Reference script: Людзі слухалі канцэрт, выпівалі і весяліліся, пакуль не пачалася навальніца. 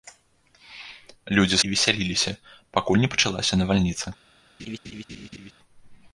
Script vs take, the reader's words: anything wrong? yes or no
yes